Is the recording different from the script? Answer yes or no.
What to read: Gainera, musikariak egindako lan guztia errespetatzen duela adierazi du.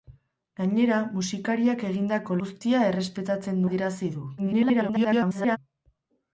yes